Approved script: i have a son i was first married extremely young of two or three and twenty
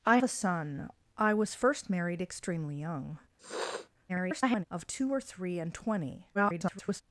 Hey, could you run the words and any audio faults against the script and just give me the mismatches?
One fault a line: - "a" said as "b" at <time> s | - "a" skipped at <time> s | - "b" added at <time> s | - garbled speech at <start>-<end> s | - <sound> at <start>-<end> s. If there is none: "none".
- "have" skipped at 0.2 s
- sniff at 3.4-3.9 s
- garbled speech at 4.1-4.6 s
- garbled speech at 6.3-7.0 s